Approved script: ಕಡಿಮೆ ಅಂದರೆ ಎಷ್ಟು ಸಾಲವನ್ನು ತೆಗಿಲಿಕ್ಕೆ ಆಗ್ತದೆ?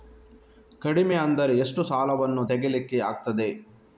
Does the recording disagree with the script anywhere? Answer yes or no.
no